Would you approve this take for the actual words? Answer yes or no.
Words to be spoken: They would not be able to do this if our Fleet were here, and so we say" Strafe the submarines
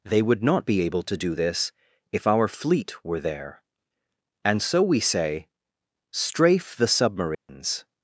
no